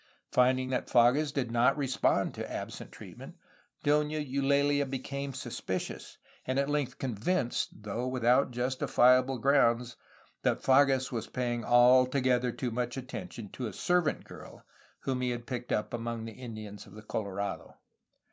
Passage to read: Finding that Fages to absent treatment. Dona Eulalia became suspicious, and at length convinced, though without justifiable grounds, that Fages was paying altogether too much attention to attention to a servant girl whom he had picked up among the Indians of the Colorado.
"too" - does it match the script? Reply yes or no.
yes